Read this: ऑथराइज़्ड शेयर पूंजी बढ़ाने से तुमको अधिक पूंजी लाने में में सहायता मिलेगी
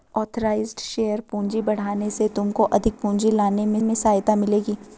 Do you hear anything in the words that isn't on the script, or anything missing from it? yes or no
no